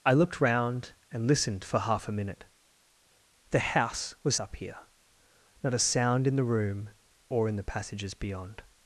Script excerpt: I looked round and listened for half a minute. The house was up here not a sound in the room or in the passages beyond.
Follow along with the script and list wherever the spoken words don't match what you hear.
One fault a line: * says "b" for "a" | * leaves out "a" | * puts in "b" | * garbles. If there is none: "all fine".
all fine